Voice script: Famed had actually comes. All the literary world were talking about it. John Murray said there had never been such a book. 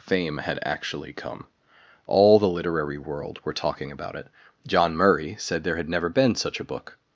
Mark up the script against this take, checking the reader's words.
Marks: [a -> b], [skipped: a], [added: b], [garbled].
[Famed -> Fame] had actually [comes. -> come] All the literary world were talking about it. John Murray said there had never been such a book.